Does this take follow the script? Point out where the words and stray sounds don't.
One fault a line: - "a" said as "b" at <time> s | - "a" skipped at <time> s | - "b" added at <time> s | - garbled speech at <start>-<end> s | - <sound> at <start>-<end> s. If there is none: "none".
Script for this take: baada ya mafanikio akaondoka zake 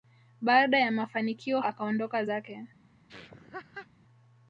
- laugh at 3.1-3.9 s